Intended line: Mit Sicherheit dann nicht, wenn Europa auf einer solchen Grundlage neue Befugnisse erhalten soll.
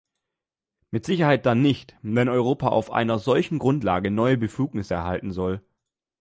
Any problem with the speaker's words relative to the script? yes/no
no